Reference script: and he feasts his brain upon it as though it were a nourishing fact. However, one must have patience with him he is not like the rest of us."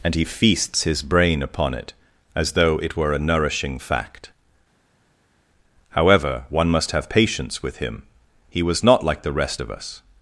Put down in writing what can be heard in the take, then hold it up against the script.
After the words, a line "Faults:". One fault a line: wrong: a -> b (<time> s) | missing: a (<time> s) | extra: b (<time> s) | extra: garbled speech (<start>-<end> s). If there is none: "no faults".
and he feasts his brain upon it as though it were a nourishing fact. However, one must have patience with him he was not like the rest of us."
Faults:
wrong: is -> was (8.6 s)